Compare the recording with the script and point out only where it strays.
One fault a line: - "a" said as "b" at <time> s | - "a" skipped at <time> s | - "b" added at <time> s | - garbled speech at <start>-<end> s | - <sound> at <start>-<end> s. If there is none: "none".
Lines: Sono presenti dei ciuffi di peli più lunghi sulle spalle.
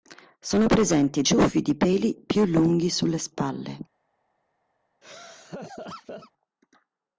- "dei" skipped at 1.2 s
- laugh at 5.0-6.3 s